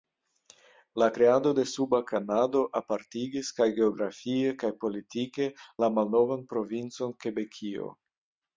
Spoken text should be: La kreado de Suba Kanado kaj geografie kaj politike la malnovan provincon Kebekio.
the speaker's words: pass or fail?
fail